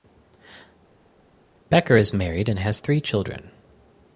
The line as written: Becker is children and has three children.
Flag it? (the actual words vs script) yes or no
yes